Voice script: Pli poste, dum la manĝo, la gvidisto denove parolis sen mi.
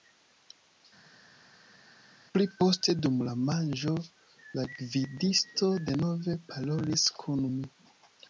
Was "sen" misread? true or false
true